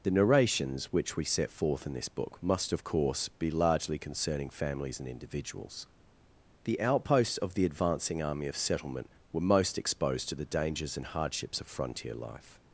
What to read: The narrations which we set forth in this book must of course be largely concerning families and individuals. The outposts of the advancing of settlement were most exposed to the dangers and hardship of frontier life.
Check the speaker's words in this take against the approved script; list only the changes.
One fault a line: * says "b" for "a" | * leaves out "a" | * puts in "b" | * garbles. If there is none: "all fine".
* puts in "army"
* says "hardships" for "hardship"